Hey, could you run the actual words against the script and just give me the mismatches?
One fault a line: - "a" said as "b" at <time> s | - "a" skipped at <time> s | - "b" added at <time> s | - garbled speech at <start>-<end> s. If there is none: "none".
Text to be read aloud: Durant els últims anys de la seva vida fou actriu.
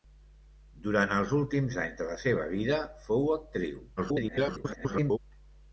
- garbled speech at 4.0-5.2 s